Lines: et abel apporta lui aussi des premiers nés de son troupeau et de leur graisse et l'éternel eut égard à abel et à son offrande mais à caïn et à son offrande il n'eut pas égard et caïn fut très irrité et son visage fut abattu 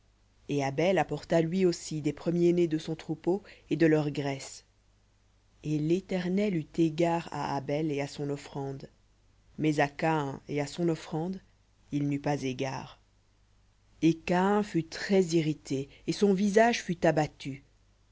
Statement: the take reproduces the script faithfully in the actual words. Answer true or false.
true